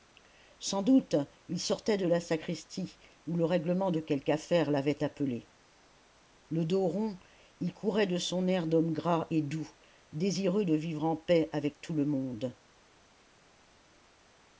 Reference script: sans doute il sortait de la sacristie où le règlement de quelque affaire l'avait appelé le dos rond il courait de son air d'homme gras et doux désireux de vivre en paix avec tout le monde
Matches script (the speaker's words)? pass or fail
pass